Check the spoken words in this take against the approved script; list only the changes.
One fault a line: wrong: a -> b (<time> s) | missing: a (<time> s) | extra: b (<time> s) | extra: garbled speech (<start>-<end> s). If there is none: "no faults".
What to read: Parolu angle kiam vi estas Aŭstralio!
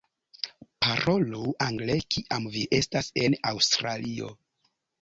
extra: en (3.3 s)